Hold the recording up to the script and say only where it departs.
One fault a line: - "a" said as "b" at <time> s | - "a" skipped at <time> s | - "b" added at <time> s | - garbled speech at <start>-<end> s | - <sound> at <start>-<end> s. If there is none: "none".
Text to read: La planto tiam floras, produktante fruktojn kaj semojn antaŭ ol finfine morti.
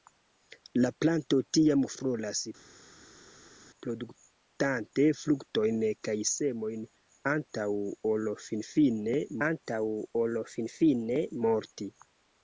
- "antaŭ ol finfine" added at 9.5 s